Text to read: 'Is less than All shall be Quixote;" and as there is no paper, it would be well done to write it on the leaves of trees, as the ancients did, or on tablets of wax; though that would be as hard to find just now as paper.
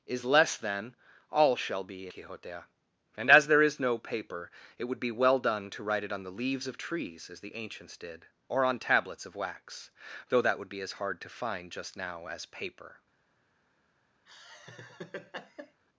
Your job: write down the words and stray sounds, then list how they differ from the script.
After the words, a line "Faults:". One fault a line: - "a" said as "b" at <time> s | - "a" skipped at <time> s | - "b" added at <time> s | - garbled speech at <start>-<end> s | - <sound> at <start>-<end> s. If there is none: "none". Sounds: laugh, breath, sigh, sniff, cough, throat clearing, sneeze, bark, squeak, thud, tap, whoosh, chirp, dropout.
'Is less than All shall be Quixote;" and as there is no paper, it would be well done to write it on the leaves of trees, as the ancients did, or on tablets of wax; though that would be as hard to find just now as paper.
Faults:
- laugh at 14.3-15.8 s